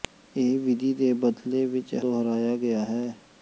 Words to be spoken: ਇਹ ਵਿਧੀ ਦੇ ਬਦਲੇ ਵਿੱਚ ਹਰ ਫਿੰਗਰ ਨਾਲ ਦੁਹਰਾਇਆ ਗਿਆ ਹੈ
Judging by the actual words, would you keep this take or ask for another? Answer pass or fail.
fail